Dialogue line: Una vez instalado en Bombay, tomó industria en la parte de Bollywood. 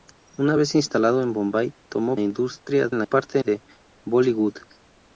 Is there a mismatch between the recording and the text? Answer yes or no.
no